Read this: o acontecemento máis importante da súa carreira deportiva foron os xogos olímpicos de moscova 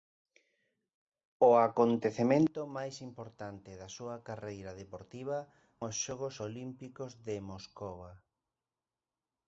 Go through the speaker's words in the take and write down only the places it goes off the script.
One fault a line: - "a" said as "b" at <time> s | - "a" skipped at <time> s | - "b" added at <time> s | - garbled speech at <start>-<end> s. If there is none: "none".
- "foron" skipped at 5.4 s